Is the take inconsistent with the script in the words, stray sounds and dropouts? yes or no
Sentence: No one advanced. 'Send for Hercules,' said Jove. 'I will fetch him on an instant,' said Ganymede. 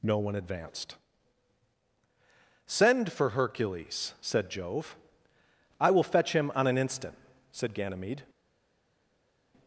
no